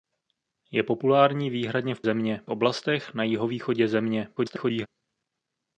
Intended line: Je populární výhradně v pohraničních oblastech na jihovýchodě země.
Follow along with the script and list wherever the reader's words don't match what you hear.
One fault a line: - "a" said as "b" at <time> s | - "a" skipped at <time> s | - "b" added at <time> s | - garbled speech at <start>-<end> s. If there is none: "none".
- "pohraničních" said as "země" at 2.0 s
- garbled speech at 4.4-4.9 s